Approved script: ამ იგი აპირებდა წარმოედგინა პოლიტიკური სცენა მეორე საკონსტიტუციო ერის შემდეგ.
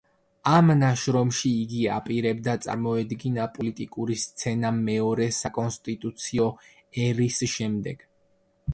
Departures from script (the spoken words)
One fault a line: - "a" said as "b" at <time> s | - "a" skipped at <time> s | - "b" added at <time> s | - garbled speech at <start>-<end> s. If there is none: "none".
- "ნაშრომში" added at 0.8 s